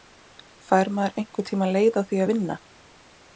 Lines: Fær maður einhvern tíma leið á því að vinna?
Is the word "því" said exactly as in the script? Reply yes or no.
yes